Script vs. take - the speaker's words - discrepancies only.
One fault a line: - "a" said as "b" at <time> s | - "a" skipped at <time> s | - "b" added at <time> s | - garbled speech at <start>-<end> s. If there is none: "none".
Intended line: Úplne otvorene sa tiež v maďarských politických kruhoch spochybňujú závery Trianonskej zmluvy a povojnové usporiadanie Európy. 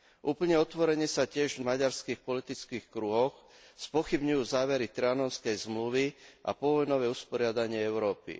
none